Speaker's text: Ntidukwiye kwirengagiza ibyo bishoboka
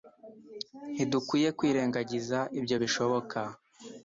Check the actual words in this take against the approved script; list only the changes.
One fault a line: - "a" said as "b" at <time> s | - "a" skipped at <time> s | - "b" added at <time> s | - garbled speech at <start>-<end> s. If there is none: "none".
none